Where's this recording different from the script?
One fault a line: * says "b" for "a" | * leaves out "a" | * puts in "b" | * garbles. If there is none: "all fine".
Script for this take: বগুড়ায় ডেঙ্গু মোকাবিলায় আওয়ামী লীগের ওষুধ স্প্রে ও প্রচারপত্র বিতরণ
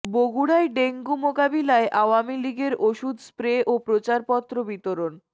all fine